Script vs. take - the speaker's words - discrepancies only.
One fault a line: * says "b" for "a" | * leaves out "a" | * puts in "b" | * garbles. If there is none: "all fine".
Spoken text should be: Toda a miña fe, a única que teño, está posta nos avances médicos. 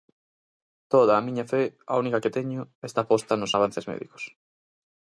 all fine